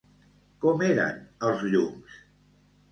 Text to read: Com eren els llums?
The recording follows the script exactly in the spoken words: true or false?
true